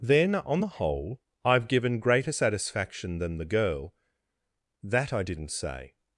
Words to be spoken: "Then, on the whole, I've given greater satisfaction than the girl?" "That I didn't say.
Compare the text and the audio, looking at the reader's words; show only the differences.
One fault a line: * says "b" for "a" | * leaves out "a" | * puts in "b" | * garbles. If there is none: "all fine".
all fine